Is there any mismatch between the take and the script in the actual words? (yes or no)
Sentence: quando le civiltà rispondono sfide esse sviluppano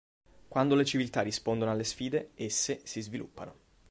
yes